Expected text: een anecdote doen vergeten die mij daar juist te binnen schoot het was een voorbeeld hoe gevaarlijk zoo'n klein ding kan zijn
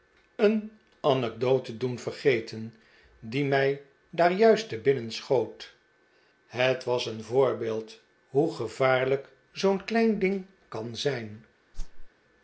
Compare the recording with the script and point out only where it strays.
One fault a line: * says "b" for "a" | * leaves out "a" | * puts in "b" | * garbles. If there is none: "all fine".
all fine